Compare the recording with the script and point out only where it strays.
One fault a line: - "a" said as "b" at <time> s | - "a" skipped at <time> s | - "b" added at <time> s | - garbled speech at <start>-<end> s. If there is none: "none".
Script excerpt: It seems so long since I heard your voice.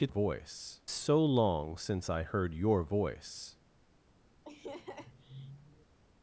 - "seems" said as "voice" at 0.1 s